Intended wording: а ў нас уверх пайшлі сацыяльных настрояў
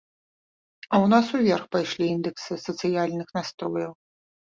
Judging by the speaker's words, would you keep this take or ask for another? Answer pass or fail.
fail